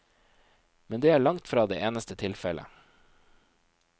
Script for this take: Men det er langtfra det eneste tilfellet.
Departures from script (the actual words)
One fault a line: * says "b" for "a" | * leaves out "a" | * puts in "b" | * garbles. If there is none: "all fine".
all fine